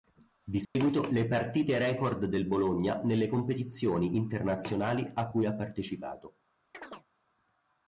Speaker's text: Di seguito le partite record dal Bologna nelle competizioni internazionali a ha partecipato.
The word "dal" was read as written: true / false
false